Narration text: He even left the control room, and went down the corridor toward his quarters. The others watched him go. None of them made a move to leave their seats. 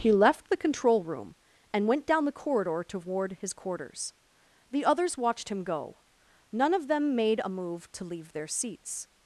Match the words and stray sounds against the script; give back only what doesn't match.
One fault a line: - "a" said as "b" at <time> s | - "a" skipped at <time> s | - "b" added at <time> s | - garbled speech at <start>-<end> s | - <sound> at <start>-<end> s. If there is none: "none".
- "even" skipped at 0.1 s